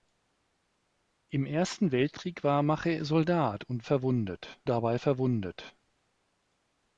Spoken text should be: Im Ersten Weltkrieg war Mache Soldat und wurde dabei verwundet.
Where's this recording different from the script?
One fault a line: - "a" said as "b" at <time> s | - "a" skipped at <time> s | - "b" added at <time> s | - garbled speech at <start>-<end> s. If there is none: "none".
- "wurde" said as "verwundet" at 3.8 s